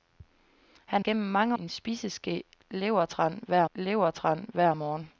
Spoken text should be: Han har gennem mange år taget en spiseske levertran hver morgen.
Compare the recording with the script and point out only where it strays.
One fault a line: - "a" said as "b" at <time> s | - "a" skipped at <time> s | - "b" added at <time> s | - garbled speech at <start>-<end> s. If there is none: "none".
- "har" skipped at 1.0 s
- "år taget en spiseske" said as "en spiseske levertran hver" at 1.6 s